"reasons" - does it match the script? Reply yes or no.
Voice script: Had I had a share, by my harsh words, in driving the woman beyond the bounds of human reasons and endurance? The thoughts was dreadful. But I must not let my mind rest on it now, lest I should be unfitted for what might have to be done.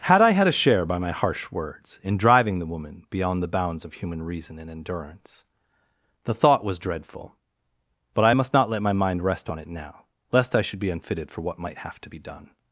no